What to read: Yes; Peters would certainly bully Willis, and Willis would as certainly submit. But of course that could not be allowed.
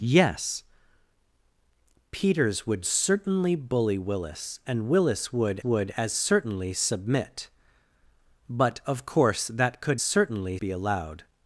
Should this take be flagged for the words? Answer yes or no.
yes